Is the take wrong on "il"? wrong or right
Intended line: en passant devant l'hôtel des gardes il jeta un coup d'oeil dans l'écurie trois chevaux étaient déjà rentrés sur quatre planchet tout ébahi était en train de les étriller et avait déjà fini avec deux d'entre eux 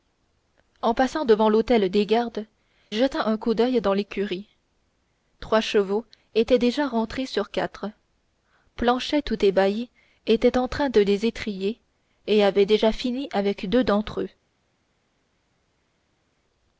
wrong